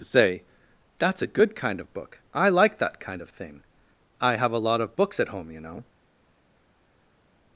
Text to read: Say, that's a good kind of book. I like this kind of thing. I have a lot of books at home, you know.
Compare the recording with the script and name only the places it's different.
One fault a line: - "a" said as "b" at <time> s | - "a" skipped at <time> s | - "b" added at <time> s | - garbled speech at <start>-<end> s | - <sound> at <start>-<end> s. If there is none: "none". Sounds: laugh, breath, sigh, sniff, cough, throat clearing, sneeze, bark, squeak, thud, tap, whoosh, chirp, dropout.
- "this" said as "that" at 2.8 s